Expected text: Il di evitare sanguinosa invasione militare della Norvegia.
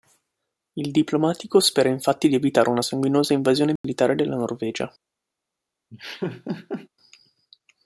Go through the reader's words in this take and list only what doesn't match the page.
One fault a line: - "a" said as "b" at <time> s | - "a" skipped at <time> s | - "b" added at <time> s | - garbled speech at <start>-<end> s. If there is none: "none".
- "diplomatico spera infatti" added at 0.9 s
- "una" added at 2.7 s